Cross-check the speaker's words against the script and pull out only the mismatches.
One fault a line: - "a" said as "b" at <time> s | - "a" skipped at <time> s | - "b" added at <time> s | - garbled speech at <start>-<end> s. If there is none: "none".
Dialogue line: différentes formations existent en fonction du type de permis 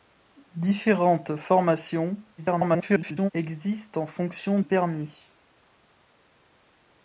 - garbled speech at 2.4-3.3 s
- "du type de" skipped at 4.6 s